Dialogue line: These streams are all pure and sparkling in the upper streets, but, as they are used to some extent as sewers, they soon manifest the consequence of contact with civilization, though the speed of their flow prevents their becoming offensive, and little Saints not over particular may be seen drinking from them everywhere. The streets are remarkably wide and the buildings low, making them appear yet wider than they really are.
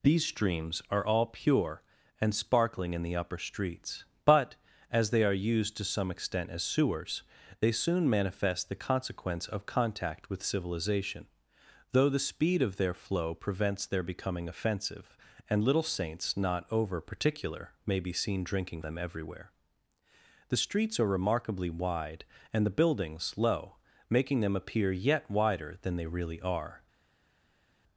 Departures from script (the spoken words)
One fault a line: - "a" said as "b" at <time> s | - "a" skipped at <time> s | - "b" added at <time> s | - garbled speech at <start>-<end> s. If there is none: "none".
- "from" skipped at 18.8 s